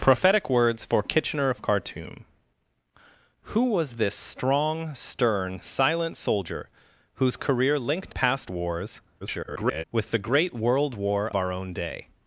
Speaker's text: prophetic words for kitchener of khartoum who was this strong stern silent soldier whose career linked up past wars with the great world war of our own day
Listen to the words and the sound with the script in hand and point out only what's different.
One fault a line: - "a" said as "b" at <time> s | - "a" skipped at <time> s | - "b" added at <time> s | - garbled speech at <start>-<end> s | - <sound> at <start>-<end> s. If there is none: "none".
- "up" skipped at 8.2 s
- garbled speech at 9.2-9.8 s
- "of" skipped at 11.3 s